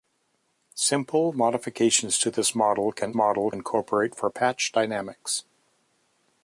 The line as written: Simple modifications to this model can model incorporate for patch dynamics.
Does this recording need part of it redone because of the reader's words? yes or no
no